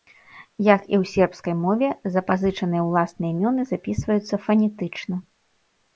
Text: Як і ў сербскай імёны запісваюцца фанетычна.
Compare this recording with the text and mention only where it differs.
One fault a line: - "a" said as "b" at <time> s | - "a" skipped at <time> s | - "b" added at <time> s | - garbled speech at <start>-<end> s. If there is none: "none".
- "мове запазычаныя ўласныя" added at 1.6 s